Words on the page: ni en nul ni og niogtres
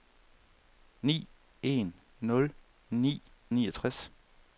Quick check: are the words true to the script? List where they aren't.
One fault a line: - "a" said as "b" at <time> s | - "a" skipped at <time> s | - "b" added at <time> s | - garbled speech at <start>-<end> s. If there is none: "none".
none